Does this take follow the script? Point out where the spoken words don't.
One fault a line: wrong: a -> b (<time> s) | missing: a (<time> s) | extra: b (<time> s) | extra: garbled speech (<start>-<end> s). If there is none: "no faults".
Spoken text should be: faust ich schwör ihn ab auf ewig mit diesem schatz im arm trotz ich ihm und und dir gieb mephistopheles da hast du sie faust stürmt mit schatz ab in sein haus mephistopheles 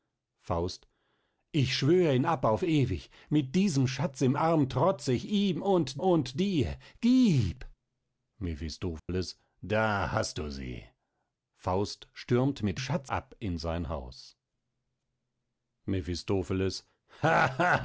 no faults